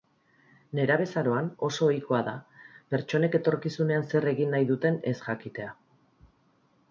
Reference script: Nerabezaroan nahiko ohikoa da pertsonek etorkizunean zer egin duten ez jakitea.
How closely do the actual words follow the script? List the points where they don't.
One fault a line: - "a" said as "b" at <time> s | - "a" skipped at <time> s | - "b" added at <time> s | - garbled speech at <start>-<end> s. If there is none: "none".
- "nahiko" said as "oso" at 1.7 s
- "nahi" added at 4.6 s